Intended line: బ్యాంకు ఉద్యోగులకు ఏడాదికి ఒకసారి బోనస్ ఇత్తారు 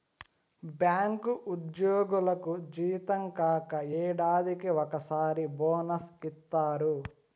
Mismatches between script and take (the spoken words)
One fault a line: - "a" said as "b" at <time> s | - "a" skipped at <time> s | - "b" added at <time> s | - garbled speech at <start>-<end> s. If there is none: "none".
- "జీతం కాక" added at 2.7 s